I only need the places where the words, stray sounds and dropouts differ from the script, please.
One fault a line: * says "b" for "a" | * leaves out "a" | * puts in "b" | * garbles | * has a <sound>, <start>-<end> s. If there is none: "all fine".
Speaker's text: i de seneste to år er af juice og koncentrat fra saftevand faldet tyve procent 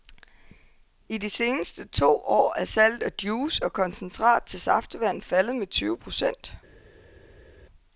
* puts in "salget"
* says "til" for "fra"
* puts in "med"